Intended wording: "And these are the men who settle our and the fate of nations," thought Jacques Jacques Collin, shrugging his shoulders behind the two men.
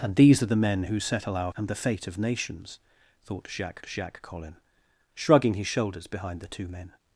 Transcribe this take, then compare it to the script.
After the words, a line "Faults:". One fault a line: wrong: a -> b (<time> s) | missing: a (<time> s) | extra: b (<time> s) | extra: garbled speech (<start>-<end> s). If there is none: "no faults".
"And these are the men who settle our and the fate of nations," thought Jacques Jacques Collin, shrugging his shoulders behind the two men.
Faults:
no faults